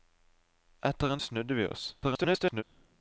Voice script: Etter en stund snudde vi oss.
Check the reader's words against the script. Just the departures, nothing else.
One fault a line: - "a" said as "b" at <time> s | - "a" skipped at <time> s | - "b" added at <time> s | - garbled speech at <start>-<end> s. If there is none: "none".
- "stund" skipped at 1.2 s
- garbled speech at 2.0-2.6 s